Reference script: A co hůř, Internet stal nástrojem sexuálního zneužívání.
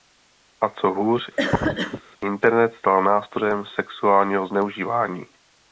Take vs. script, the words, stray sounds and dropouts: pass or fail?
fail